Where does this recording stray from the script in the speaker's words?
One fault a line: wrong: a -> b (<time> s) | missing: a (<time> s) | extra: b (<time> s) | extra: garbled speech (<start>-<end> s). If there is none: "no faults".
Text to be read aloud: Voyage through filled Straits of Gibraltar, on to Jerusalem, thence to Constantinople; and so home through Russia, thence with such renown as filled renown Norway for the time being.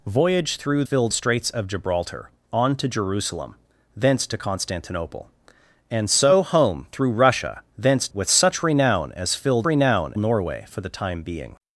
no faults